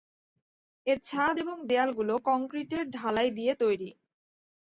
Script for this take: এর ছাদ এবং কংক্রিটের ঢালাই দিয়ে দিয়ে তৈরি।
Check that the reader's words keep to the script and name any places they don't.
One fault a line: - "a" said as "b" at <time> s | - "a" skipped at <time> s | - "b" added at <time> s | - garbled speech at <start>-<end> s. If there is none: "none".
- "দেয়ালগুলো" added at 1.7 s
- "দিয়ে" skipped at 3.5 s